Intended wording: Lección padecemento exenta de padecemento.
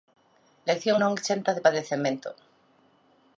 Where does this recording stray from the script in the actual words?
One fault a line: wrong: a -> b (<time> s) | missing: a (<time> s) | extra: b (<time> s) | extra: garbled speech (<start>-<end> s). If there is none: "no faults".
wrong: padecemento -> non (1.0 s)